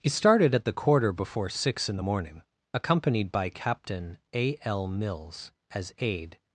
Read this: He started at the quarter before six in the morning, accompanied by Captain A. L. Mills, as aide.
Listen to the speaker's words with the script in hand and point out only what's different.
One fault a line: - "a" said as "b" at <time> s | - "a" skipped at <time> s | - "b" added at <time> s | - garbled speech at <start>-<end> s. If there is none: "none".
none